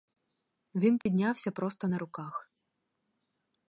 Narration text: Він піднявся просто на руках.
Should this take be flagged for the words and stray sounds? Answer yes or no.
yes